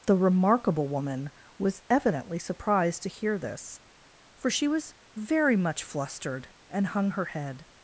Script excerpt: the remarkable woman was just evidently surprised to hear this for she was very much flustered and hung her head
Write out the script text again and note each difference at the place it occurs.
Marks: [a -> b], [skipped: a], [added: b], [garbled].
the remarkable woman was [skipped: just] evidently surprised to hear this for she was very much flustered and hung her head